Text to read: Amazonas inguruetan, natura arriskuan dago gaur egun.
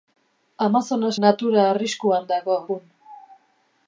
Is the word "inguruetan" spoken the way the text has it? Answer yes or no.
no